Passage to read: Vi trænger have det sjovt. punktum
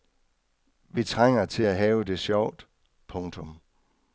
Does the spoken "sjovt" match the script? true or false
true